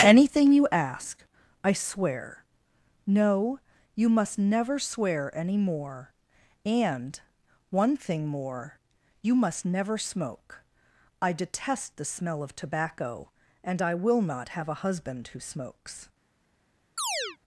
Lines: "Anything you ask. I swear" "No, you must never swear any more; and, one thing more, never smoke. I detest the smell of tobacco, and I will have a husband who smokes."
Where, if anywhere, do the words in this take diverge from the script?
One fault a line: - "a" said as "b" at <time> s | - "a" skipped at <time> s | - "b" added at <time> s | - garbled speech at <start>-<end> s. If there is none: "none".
- "you must" added at 9.2 s
- "not" added at 14.2 s